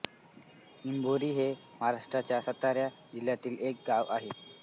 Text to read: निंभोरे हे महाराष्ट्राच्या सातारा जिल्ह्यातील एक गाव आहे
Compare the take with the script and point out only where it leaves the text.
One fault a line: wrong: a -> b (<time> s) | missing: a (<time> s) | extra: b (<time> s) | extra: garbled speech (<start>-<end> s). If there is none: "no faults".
no faults